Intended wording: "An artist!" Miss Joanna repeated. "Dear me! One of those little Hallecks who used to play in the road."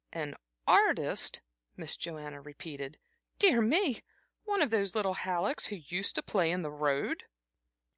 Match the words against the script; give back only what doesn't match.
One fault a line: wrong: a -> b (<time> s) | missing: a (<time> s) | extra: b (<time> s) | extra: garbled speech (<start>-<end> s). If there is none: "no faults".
no faults